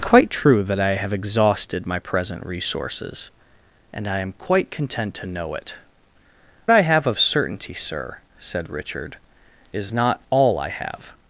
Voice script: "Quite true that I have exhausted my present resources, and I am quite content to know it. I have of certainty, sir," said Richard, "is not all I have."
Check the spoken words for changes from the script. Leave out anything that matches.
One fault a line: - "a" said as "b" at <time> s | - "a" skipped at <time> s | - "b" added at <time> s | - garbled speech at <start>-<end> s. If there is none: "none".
none